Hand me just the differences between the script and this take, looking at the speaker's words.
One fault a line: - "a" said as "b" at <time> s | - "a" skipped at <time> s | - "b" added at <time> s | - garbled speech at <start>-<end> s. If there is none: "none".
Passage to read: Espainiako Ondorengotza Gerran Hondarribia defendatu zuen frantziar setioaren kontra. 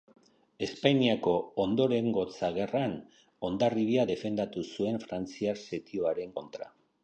none